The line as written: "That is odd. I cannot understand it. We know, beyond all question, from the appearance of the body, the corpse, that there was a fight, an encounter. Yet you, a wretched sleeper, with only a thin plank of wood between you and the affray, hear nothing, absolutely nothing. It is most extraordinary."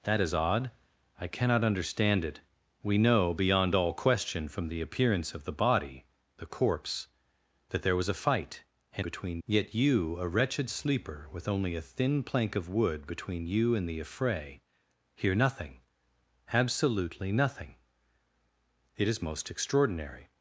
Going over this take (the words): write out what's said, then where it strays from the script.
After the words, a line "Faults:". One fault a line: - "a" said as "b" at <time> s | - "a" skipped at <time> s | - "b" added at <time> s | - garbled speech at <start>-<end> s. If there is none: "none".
"That is odd. I cannot understand it. We know, beyond all question, from the appearance of the body, the corpse, that there was a fight, an between. Yet you, a wretched sleeper, with only a thin plank of wood between you and the affray, hear nothing, absolutely nothing. It is most extraordinary."
Faults:
- "encounter" said as "between" at 9.0 s